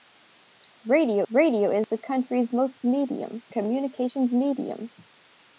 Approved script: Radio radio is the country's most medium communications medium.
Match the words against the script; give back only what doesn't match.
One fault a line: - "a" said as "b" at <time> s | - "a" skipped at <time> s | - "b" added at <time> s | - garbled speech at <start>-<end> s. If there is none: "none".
none